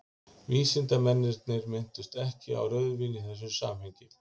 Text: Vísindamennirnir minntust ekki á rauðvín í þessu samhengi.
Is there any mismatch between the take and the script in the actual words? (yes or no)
no